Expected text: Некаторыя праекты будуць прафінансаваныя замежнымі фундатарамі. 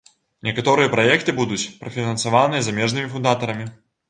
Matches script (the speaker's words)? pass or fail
pass